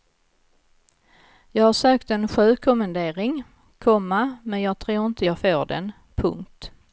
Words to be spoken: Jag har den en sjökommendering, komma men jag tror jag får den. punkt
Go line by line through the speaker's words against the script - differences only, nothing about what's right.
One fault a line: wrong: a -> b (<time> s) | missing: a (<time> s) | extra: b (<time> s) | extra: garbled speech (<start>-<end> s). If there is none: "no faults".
wrong: den -> sökt (1.7 s)
extra: inte (5.0 s)